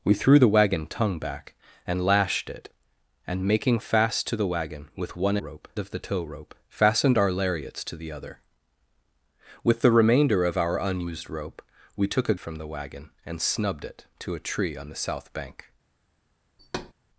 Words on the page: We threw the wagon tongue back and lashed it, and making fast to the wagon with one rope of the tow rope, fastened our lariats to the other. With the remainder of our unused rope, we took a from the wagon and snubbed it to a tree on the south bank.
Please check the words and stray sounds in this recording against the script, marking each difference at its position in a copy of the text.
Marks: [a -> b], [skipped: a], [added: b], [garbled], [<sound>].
We threw the wagon tongue back and lashed it, and making fast to the wagon with one rope of the tow rope, fastened our lariats to the other. With the remainder of our unused rope, we took a from the wagon and snubbed it to a tree on the south bank. [thud]